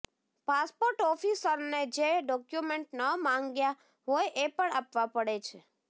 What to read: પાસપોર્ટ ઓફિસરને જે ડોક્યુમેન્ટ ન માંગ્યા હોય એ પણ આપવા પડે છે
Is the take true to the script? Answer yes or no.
yes